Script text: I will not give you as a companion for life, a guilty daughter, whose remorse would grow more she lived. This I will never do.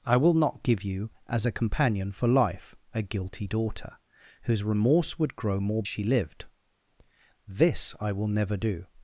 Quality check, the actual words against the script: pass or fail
pass